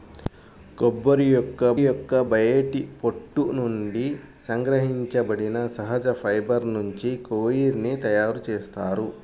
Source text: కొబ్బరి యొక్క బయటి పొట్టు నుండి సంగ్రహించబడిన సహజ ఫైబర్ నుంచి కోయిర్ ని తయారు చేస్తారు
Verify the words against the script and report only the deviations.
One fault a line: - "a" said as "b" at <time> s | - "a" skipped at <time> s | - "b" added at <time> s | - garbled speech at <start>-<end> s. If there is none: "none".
- "యొక్క" added at 1.8 s